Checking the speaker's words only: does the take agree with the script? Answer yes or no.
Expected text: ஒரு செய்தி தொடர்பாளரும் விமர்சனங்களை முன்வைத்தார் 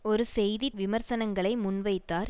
no